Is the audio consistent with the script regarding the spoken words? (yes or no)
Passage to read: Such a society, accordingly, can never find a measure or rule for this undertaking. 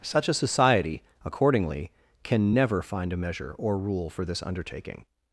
yes